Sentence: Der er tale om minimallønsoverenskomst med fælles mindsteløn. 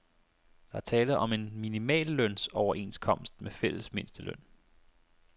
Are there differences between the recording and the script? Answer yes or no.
yes